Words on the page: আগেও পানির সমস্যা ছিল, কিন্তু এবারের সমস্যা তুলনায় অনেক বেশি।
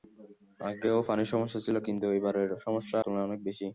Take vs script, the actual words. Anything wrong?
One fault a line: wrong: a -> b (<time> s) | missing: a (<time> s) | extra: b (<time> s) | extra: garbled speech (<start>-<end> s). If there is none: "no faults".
no faults